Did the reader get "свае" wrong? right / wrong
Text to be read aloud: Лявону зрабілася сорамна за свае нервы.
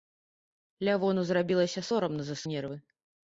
wrong